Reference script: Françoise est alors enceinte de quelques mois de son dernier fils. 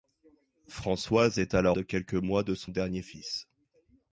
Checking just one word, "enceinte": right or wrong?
wrong